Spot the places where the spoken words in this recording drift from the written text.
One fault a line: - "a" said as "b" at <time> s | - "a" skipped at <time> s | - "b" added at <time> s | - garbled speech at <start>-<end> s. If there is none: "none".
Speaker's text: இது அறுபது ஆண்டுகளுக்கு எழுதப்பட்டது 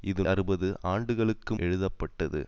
none